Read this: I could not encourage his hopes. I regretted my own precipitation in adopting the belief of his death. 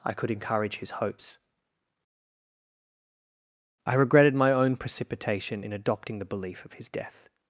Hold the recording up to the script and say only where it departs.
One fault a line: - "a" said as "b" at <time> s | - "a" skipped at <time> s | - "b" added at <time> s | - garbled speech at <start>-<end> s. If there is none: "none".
- "not" skipped at 0.3 s